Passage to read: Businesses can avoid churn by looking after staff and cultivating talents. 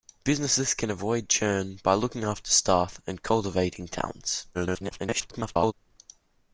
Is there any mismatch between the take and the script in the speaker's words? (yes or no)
yes